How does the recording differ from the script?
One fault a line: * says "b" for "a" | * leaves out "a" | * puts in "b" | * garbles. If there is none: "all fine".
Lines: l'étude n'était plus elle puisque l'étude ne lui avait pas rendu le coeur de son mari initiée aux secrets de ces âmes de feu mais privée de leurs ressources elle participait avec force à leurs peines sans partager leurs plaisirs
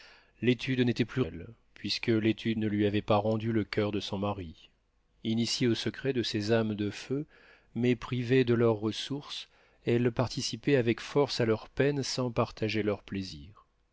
all fine